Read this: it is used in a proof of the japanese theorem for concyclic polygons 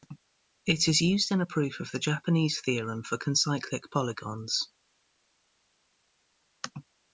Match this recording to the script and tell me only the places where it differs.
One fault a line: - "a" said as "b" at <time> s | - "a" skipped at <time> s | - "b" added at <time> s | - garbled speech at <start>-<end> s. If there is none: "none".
none